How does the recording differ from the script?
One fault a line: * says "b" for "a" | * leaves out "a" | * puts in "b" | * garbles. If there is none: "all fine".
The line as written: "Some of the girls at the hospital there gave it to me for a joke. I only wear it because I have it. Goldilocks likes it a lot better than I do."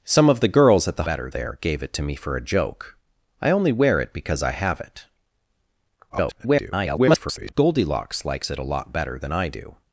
* says "better" for "hospital"
* garbles